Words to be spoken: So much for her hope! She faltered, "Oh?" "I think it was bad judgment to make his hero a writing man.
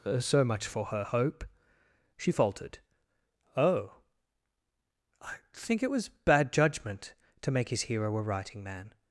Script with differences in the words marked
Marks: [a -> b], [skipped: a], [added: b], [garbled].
So much for her hope! She faltered, "Oh?" "I think it was bad judgment to make his hero a writing man.